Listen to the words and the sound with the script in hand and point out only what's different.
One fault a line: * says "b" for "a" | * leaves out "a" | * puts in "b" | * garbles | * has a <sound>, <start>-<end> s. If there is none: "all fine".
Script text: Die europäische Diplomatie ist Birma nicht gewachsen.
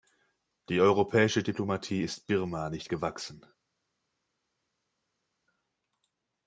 all fine